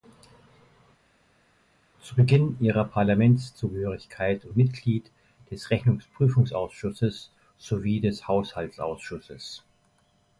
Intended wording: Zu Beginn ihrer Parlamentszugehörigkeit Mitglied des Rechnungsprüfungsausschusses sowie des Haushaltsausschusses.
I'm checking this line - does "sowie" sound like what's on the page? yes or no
yes